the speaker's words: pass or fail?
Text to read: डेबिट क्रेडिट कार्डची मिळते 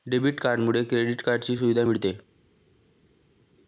fail